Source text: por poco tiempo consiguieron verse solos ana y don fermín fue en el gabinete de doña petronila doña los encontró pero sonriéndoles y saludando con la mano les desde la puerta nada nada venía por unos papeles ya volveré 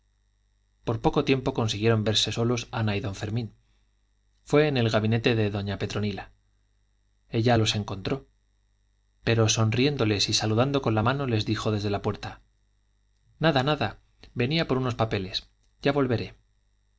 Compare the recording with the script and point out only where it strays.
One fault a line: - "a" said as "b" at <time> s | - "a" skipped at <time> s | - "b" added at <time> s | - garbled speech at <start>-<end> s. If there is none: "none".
- "doña" said as "ella" at 7.3 s
- "dijo" added at 11.4 s